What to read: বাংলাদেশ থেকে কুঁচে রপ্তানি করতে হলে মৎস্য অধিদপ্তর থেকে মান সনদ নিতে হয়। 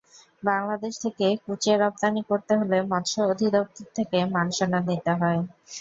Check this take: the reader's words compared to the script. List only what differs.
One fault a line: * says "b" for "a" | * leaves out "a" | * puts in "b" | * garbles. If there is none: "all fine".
all fine